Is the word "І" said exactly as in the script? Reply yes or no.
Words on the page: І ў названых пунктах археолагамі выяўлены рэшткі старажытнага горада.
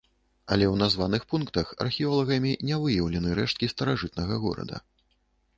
no